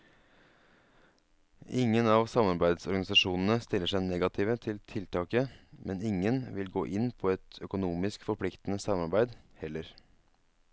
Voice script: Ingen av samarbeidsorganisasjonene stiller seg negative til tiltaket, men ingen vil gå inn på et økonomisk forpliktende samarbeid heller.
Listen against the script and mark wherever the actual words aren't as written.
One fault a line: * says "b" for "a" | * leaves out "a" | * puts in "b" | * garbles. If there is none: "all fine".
all fine